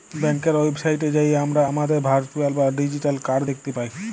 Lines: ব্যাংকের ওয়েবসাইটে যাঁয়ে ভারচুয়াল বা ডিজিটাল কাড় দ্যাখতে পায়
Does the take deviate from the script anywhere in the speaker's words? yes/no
yes